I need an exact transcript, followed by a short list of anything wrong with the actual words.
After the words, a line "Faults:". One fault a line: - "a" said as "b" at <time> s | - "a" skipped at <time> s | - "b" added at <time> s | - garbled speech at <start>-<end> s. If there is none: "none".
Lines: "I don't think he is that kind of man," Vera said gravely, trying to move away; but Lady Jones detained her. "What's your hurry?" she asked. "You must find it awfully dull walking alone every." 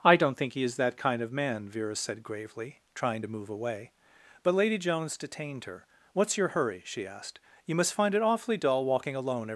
"I don't think he is that kind of man," Vera said gravely, trying to move away; but Lady Jones detained her. "What's your hurry?" she asked. "You must find it awfully dull walking alone every."
Faults:
none